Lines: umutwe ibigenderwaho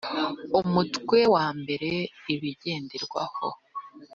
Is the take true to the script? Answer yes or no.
no